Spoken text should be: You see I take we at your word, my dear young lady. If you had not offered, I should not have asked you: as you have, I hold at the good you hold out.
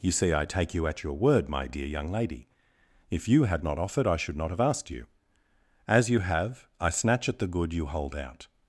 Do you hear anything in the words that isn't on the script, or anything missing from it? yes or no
yes